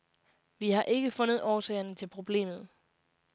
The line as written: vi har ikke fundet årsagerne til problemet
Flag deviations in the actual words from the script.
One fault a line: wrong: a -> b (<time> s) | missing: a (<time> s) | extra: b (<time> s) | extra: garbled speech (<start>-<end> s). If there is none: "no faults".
no faults